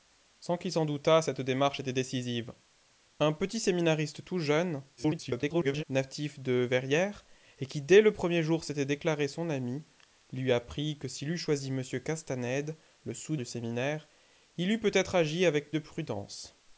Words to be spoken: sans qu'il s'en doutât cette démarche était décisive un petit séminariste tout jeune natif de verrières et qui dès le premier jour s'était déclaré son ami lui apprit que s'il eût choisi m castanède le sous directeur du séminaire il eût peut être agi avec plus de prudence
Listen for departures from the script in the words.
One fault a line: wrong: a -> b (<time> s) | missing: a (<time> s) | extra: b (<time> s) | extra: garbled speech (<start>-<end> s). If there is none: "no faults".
extra: garbled speech (5.0-5.8 s)
missing: directeur (13.3 s)
missing: plus (15.7 s)